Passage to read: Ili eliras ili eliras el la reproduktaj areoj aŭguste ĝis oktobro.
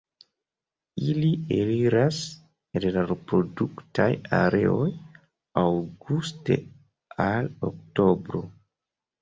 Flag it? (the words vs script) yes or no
yes